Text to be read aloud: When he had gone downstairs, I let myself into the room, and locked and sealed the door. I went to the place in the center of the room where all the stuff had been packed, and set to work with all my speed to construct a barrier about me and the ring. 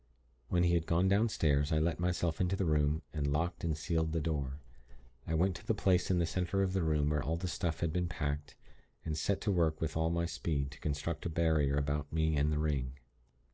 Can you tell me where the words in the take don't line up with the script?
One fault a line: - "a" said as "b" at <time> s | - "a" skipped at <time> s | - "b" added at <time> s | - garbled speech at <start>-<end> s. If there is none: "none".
none